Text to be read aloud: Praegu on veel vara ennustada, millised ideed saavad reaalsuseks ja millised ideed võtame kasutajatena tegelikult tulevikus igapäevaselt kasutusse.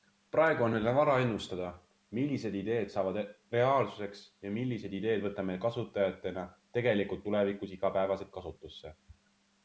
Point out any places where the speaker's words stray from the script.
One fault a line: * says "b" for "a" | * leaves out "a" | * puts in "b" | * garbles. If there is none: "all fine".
all fine